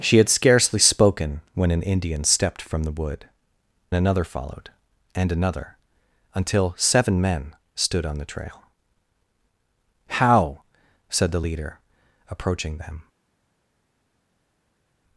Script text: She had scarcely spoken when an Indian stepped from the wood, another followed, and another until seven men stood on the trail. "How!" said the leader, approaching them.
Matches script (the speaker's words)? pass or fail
pass